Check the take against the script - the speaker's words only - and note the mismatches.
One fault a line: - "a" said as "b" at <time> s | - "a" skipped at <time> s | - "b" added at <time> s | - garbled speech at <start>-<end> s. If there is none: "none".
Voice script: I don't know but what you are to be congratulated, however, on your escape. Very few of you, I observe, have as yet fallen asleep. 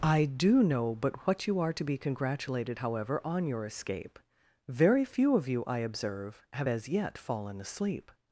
- "don't" said as "do" at 0.2 s